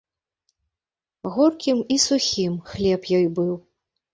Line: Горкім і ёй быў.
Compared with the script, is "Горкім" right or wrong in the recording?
right